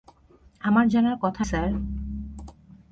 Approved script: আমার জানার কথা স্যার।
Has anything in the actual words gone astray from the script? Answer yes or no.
no